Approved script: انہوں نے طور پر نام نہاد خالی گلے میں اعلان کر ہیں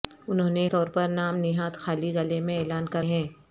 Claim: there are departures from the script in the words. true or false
false